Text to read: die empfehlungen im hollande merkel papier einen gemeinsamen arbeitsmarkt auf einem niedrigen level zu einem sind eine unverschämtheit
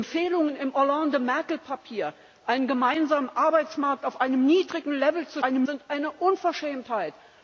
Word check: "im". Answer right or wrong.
right